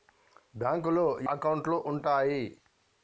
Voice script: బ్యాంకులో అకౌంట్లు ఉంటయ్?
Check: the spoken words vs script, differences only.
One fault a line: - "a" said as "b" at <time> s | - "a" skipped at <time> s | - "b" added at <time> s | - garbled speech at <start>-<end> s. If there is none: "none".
none